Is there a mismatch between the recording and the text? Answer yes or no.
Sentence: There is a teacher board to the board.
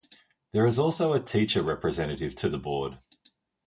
yes